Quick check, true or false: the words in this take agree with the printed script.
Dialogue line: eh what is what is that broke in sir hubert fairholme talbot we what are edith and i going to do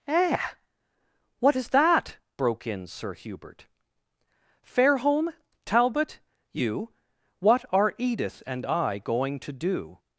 false